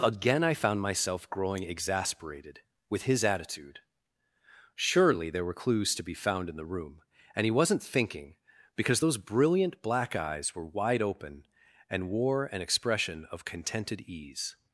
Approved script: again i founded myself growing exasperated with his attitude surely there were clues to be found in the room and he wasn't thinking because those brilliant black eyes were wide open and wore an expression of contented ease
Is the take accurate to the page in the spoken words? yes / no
no